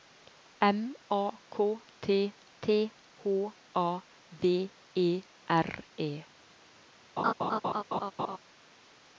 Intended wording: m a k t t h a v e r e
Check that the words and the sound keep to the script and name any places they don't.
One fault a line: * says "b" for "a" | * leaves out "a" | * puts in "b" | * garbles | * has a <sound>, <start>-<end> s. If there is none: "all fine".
* has a laugh, 7.2-8.4 s